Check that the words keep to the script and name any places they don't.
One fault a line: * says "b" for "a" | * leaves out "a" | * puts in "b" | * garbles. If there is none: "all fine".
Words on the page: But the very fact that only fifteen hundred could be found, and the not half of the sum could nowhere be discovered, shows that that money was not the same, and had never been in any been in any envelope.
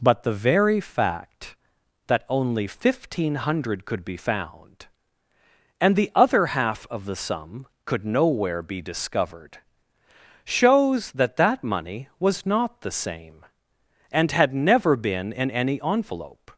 * says "other" for "not"
* leaves out "been in any"